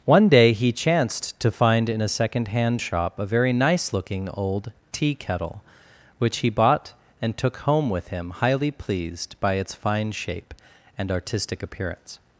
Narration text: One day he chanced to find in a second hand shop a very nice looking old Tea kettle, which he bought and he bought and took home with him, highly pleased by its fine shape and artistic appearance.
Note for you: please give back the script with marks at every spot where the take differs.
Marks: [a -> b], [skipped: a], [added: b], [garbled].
One day he chanced to find in a second hand shop a very nice looking old Tea kettle, which he bought and [skipped: he bought and] took home with him, highly pleased by its fine shape and artistic appearance.